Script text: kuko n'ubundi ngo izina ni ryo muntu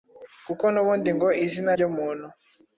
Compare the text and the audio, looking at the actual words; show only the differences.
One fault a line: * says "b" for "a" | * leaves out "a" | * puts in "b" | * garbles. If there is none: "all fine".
* leaves out "ni"